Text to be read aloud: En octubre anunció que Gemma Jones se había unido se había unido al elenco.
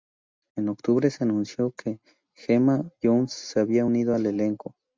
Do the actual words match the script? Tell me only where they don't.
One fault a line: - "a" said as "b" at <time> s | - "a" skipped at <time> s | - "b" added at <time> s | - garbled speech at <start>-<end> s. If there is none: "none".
- "se" added at 1.1 s
- "se había unido" skipped at 4.1 s